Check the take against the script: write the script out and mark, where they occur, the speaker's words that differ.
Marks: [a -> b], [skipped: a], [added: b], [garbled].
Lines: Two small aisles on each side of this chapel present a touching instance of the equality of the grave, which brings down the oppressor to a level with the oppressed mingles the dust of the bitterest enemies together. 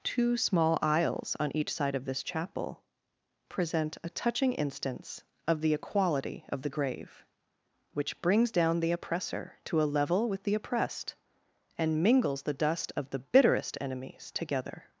Two small aisles on each side of this chapel present a touching instance of the equality of the grave, which brings down the oppressor to a level with the oppressed [added: and] mingles the dust of the bitterest enemies together.